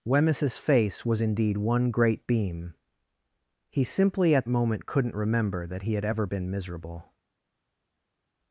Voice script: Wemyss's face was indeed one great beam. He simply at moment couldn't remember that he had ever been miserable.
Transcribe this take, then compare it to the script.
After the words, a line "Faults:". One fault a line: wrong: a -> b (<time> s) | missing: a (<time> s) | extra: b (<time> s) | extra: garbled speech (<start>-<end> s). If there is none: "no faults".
Wemyss's face was indeed one great beam. He simply at moment couldn't remember that he had ever been miserable.
Faults:
no faults